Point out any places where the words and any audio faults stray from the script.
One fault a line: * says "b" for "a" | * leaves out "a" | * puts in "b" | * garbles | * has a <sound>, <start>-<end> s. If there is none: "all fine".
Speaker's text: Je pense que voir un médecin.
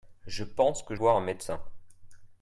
all fine